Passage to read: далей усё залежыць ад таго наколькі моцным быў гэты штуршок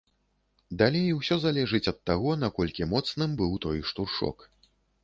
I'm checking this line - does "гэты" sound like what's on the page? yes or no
no